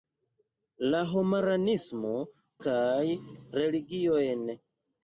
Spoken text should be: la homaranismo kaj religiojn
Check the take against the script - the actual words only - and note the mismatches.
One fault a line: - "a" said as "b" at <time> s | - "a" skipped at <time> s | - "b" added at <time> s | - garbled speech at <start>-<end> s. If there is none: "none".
none